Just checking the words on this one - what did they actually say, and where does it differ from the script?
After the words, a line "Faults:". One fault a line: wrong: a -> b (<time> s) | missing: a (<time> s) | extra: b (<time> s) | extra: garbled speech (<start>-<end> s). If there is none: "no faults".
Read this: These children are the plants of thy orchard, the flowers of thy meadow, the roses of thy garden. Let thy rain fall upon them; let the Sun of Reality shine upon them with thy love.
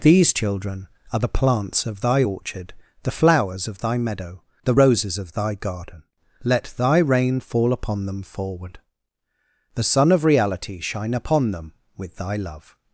These children are the plants of thy orchard, the flowers of thy meadow, the roses of thy garden. Let thy rain fall upon them; forward the Sun of Reality shine upon them with thy love.
Faults:
wrong: let -> forward (8.2 s)